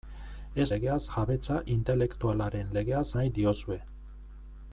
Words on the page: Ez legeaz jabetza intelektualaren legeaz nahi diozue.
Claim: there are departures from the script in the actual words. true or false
false